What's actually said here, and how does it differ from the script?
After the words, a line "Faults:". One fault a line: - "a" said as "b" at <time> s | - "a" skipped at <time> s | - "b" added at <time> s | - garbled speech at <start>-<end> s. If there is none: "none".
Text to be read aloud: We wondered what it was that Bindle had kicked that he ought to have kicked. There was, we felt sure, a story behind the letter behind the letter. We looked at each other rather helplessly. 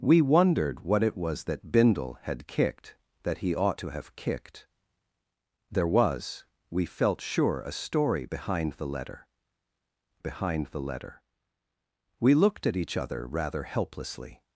We wondered what it was that Bindle had kicked that he ought to have kicked. There was, we felt sure, a story behind the letter behind the letter. We looked at each other rather helplessly.
Faults:
none